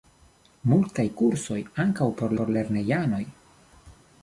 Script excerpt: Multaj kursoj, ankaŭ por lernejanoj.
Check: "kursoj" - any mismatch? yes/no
no